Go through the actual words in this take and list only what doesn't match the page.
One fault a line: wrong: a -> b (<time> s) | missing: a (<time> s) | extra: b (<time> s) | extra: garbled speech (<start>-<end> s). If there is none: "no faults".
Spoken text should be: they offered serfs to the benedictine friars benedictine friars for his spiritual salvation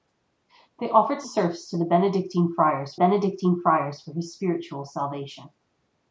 no faults